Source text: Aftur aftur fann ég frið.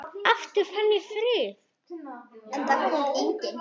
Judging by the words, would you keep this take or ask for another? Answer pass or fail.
fail